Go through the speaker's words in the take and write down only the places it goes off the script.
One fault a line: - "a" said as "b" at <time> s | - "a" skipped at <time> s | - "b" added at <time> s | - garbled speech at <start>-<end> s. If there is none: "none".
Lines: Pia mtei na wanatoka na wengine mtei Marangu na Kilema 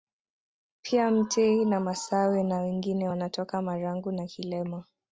- "wanatoka" said as "masawe" at 1.8 s
- "mtei" said as "wanatoka" at 3.1 s